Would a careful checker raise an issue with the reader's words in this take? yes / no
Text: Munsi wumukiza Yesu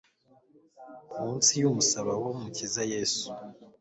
yes